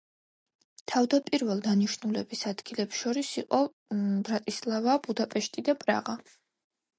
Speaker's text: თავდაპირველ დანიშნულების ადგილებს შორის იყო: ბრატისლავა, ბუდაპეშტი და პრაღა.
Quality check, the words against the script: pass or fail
pass